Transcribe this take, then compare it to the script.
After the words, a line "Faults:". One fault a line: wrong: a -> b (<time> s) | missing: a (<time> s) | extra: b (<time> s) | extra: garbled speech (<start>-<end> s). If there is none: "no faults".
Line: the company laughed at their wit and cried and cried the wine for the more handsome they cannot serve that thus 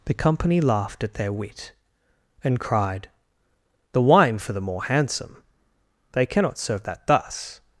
the company laughed at their wit and cried the wine for the more handsome they cannot serve that thus
Faults:
missing: and cried (3.1 s)